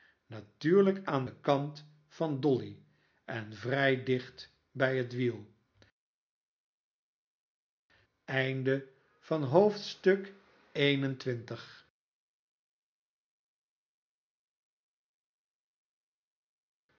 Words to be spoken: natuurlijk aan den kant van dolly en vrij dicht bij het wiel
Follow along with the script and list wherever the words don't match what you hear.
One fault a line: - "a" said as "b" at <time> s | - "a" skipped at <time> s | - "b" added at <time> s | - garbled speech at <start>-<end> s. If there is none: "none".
none